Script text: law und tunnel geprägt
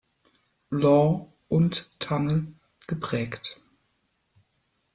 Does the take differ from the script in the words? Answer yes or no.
no